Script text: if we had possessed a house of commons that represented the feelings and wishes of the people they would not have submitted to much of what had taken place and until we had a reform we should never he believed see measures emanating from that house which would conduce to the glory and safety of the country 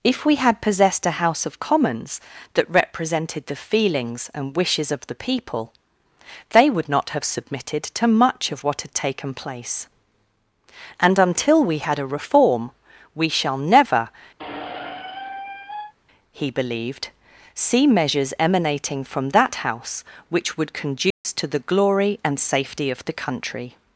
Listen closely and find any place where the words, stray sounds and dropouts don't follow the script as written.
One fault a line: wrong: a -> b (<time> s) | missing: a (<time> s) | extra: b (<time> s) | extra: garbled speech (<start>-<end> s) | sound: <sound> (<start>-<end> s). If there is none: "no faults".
wrong: should -> shall (13.3 s)
sound: squeak (14.4-15.9 s)
sound: dropout (21.1-21.3 s)